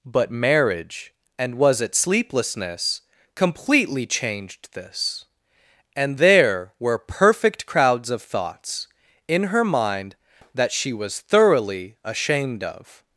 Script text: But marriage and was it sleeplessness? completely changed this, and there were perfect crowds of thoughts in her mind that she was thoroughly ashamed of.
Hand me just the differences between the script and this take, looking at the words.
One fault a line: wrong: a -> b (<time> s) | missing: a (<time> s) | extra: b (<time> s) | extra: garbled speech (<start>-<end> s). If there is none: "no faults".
no faults